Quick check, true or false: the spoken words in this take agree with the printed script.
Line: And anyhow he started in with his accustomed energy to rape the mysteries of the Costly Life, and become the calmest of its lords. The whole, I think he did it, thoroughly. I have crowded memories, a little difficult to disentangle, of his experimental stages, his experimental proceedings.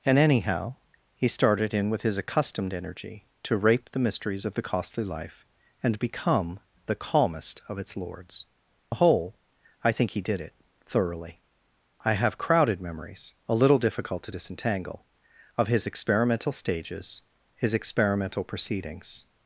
true